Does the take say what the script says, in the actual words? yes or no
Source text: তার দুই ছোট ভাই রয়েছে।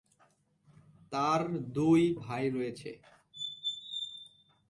no